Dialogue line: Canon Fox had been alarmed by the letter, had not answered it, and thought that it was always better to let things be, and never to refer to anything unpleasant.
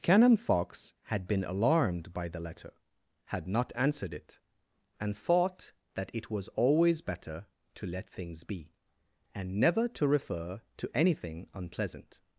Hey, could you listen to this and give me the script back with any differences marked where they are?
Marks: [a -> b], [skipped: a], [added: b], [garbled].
Canon Fox had been alarmed by the letter, had not answered it, and thought that it was always better to let things be, and never to refer to anything unpleasant.